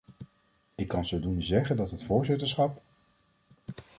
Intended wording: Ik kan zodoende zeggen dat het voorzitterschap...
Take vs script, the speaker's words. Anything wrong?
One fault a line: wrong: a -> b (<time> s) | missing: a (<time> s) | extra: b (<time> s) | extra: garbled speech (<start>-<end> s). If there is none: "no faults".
no faults